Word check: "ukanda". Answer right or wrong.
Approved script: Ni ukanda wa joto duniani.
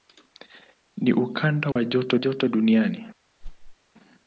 right